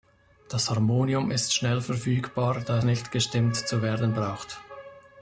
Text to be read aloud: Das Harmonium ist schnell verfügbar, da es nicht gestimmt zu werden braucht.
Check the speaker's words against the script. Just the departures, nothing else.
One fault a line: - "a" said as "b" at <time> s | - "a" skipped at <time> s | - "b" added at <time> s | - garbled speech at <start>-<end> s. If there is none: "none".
- "es" skipped at 2.8 s